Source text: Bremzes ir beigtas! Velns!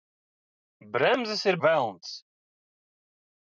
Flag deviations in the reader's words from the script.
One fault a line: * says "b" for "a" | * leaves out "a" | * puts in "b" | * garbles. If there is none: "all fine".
* leaves out "beigtas"